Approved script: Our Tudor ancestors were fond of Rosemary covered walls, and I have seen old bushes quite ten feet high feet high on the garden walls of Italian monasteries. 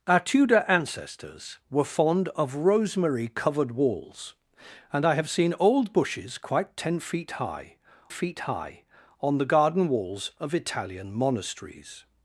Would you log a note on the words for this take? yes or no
no